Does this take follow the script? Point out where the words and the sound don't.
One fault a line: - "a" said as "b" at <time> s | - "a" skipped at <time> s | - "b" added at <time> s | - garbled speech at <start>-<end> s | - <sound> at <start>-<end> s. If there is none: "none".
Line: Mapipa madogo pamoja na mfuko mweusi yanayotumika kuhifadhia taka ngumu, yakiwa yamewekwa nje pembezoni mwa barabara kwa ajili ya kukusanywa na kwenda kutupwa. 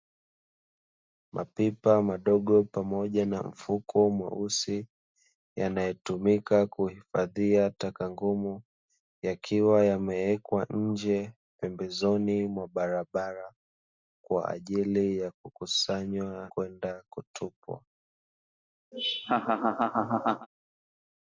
- "na" skipped at 16.5 s
- laugh at 18.9-20.5 s